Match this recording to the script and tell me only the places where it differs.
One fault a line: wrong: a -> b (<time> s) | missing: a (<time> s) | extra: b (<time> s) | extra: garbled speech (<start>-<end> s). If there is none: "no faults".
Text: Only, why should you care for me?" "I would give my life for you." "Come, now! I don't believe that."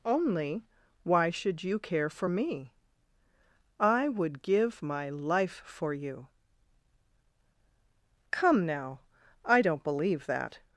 no faults